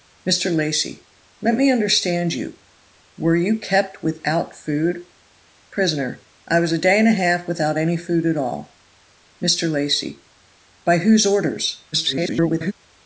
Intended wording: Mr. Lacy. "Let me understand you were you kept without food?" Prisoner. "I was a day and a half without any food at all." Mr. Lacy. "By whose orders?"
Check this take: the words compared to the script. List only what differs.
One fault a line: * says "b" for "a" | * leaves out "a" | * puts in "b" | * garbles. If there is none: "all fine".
* garbles